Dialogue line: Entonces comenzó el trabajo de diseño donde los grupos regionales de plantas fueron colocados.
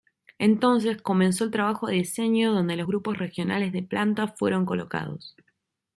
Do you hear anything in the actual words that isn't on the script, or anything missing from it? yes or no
no